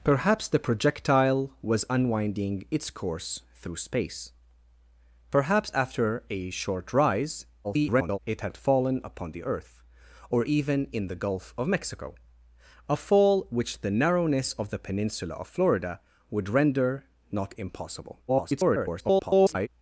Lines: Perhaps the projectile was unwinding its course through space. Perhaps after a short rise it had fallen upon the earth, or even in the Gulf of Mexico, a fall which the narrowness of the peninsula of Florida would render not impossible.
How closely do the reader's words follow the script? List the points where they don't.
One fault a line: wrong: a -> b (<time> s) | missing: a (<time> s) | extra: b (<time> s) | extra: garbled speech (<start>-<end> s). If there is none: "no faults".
extra: garbled speech (7.6-8.2 s)
extra: garbled speech (18.3-19.7 s)